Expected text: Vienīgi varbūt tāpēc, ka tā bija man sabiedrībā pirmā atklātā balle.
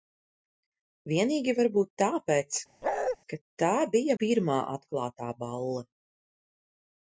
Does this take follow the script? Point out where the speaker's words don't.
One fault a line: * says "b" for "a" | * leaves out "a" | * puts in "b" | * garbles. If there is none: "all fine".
* leaves out "man sabiedrībā"